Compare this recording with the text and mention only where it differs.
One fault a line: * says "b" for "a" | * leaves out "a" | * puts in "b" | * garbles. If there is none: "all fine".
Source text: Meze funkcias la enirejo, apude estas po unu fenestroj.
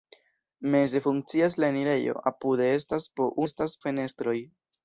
* says "estas" for "unu"